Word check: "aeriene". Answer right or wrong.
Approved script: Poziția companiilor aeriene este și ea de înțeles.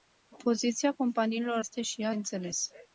wrong